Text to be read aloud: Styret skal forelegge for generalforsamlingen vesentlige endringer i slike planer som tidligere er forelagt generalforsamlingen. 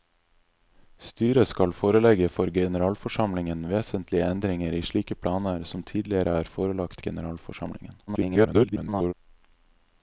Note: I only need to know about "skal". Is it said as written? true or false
true